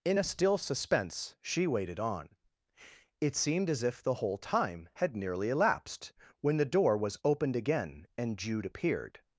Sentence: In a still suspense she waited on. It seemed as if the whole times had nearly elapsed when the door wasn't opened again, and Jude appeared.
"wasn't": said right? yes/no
no